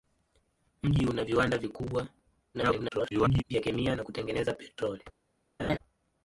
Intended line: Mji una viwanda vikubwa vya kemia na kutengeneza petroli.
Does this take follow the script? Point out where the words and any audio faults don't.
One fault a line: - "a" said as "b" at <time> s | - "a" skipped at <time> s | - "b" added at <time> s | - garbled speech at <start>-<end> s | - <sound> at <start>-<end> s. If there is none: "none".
- garbled speech at 2.5-3.4 s
- laugh at 5.6-5.8 s